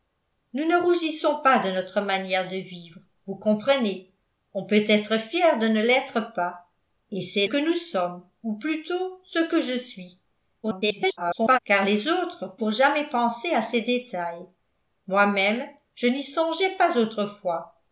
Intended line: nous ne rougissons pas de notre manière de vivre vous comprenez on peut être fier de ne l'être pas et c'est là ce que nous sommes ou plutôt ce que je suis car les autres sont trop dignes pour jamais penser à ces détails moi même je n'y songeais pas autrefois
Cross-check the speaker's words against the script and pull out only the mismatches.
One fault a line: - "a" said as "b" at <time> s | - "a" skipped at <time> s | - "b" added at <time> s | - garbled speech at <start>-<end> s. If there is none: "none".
- "là ce" skipped at 7.5 s
- garbled speech at 10.6-11.6 s
- "sont trop dignes" skipped at 12.5 s